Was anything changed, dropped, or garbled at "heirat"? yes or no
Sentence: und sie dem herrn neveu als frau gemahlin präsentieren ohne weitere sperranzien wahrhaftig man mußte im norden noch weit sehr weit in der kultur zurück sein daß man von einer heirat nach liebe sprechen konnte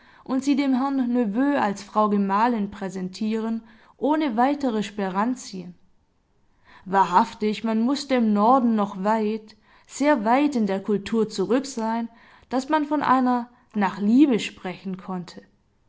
yes